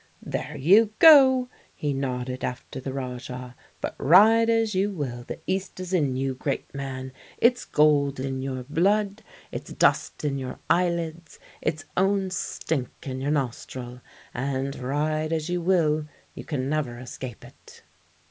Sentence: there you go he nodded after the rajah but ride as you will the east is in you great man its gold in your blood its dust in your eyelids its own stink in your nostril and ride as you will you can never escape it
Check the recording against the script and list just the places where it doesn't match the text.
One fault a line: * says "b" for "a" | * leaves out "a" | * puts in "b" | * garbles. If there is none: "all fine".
all fine